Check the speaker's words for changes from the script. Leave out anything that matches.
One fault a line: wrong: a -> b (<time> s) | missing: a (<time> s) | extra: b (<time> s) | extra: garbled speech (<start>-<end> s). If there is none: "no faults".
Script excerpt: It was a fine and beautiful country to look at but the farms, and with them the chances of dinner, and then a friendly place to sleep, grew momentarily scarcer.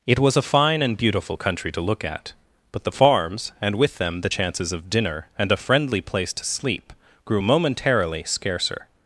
missing: then (5.5 s)